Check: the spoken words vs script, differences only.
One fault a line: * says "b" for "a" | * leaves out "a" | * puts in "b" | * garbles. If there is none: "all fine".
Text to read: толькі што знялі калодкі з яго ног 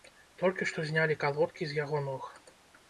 all fine